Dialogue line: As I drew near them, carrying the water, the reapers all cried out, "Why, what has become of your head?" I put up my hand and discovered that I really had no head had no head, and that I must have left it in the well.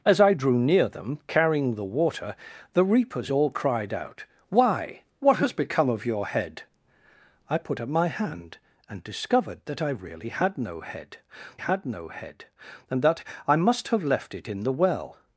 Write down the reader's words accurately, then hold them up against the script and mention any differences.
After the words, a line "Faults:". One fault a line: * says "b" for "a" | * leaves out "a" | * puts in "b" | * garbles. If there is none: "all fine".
As I drew near them, carrying the water, the reapers all cried out, "Why, what has become of your head?" I put up my hand and discovered that I really had no head had no head, and that I must have left it in the well.
Faults:
all fine